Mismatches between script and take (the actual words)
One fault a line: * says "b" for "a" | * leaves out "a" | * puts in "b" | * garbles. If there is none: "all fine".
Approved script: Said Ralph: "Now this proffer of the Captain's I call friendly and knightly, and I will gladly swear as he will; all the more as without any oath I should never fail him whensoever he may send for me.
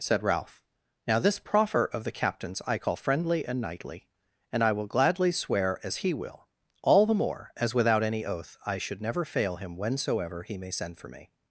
all fine